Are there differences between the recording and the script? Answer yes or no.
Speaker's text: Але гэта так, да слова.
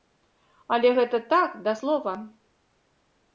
no